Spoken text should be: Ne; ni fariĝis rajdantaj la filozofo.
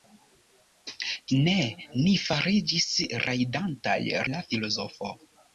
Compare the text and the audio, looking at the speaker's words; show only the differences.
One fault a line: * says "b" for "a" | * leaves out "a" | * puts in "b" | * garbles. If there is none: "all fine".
all fine